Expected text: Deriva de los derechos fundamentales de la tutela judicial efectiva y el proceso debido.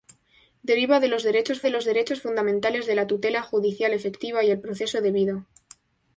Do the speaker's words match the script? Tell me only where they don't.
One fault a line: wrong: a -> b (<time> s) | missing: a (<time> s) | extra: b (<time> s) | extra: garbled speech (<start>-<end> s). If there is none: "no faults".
extra: de los derechos (1.6 s)